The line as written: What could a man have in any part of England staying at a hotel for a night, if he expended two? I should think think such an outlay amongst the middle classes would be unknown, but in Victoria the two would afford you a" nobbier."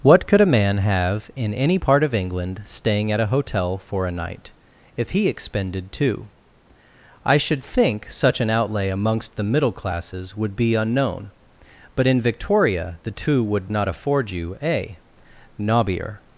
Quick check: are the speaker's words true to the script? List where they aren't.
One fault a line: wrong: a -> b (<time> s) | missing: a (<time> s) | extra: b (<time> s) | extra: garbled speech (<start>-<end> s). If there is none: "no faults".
missing: think (8.1 s)
extra: not (13.7 s)